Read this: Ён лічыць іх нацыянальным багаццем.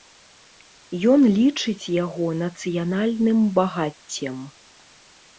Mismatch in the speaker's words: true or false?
true